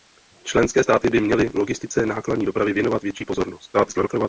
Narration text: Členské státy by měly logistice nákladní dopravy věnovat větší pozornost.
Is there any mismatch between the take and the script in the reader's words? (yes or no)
yes